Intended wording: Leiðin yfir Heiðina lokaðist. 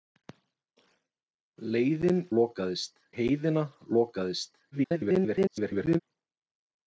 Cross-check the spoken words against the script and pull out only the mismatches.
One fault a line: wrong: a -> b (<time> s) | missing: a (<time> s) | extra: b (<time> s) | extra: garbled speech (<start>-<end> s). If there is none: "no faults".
wrong: yfir -> lokaðist (2.4 s)
extra: garbled speech (4.7-6.0 s)